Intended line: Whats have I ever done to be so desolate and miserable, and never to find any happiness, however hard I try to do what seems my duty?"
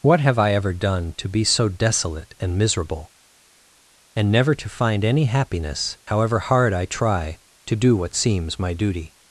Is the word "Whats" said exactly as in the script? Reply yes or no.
no